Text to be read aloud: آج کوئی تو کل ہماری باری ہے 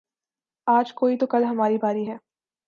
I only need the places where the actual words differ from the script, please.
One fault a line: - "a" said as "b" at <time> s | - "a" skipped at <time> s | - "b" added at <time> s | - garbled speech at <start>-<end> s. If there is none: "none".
none